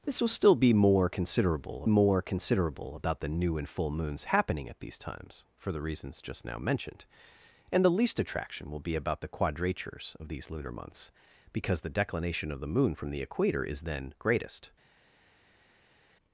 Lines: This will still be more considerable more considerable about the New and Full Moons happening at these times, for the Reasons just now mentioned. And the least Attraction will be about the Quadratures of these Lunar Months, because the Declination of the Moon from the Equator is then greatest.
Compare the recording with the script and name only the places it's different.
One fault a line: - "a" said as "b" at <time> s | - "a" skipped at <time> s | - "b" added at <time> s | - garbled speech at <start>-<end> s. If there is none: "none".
none